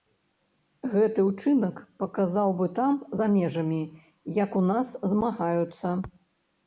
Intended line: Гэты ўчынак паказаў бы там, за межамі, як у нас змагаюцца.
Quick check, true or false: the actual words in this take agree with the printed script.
true